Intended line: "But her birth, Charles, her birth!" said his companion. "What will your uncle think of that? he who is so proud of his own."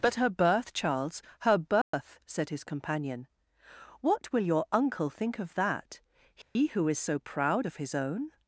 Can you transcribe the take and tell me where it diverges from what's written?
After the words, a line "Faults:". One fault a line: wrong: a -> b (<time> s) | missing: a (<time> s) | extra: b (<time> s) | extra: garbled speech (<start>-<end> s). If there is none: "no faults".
"But her birth, Charles, her birth!" said his companion. "What will your uncle think of that? he who is so proud of his own."
Faults:
no faults